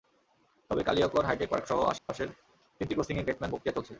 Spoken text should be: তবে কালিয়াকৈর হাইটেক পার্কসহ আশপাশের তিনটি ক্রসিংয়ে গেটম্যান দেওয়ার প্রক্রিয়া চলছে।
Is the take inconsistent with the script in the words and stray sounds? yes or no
yes